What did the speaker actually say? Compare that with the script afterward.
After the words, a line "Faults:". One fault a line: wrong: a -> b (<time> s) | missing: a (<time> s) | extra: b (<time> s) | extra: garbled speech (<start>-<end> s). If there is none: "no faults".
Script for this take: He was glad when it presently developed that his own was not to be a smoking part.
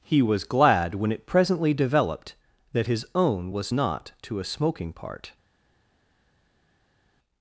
He was glad when it presently developed that his own was not to a smoking part.
Faults:
missing: be (4.4 s)